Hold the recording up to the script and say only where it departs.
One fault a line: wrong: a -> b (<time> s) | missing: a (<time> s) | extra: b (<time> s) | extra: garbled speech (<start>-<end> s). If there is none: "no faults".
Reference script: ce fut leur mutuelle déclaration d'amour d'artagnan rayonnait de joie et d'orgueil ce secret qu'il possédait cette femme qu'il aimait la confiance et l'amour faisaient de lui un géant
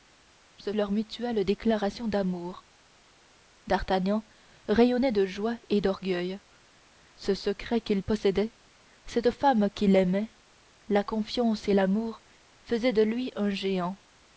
missing: fut (0.7 s)